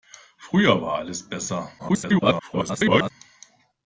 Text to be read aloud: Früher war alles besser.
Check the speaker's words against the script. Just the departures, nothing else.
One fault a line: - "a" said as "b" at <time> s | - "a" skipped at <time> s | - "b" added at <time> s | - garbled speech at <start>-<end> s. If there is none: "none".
- garbled speech at 1.8-3.1 s